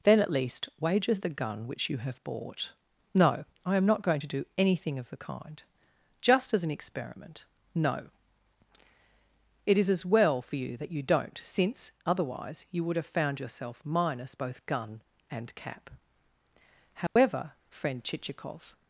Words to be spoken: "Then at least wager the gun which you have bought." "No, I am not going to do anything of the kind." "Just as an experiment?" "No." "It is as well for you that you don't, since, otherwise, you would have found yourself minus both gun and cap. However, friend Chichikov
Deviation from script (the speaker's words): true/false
false